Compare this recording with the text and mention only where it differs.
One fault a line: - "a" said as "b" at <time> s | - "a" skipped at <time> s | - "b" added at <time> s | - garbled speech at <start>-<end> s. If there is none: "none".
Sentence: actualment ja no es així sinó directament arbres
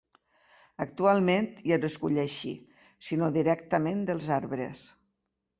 - "cull" added at 2.0 s
- "dels" added at 4.1 s